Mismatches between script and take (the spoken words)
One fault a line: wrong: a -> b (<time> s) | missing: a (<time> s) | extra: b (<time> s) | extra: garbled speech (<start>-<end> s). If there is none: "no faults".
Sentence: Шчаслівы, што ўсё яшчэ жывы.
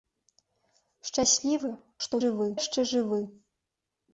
wrong: ўсё -> жывы (2.2 s)